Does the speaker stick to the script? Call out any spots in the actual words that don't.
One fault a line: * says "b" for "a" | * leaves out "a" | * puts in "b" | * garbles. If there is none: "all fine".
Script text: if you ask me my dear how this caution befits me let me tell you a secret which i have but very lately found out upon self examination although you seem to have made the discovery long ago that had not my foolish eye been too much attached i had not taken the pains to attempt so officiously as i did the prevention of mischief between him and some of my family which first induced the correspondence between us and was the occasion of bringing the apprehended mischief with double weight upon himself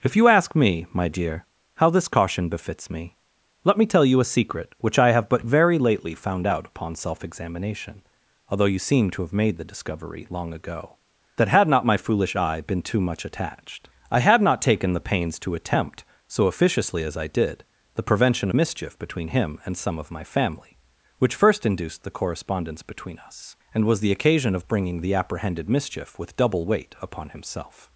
* leaves out "of"